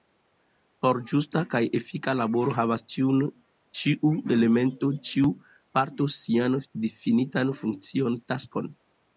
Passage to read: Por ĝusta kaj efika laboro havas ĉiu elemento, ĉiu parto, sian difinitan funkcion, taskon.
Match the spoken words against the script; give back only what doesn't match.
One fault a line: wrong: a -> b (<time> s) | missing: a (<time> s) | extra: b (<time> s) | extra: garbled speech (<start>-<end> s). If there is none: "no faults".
no faults